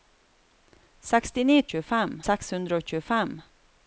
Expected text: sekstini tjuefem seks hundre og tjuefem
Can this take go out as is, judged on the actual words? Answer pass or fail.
pass